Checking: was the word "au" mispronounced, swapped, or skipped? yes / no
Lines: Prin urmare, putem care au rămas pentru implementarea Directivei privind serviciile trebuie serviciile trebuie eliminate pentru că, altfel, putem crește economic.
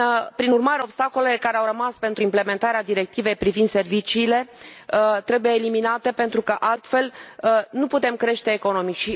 no